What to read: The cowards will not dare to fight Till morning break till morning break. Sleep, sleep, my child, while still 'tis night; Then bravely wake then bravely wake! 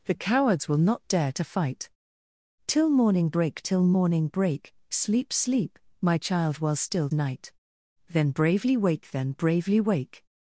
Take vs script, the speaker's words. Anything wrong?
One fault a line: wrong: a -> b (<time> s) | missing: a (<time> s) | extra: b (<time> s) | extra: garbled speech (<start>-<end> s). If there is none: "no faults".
missing: tis (7.1 s)